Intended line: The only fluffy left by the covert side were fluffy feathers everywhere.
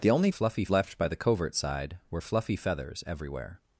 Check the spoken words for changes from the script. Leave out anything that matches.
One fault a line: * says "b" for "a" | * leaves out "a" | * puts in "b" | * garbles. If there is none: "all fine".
all fine